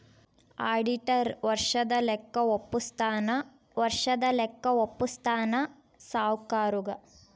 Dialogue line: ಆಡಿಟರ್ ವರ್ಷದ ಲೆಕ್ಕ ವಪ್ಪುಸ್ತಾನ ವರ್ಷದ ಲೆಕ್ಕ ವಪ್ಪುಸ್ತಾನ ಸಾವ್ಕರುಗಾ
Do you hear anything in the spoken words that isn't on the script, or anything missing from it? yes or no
no